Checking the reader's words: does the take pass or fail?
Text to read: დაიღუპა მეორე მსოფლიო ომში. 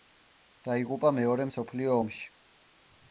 pass